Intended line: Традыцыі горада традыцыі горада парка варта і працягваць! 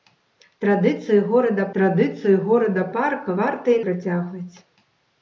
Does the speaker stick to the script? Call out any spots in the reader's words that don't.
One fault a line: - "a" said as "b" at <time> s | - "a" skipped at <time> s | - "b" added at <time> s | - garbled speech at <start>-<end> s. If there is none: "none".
none